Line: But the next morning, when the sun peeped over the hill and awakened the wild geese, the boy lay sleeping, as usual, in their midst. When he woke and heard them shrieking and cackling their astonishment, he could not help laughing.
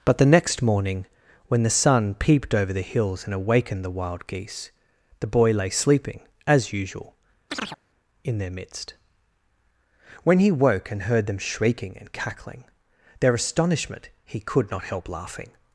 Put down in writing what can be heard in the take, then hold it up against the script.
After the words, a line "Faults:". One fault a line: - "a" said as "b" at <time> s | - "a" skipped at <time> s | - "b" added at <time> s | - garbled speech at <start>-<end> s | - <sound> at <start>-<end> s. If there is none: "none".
But the next morning, when the sun peeped over the hills and awakened the wild geese, the boy lay sleeping, as usual, in their midst. When he woke and heard them shrieking and cackling their astonishment, he could not help laughing.
Faults:
- "hill" said as "hills" at 2.8 s
- chirp at 7.5-7.8 s